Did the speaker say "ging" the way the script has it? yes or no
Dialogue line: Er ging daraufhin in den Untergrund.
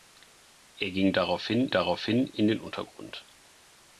yes